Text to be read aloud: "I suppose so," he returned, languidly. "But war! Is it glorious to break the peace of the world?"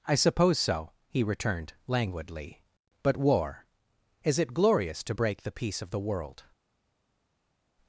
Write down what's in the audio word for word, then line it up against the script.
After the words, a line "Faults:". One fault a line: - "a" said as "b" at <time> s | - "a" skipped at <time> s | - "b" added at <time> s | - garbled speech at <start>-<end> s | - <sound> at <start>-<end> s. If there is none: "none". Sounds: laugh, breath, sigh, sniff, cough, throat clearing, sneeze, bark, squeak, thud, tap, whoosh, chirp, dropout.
"I suppose so," he returned, languidly. "But war! Is it glorious to break the peace of the world?"
Faults:
none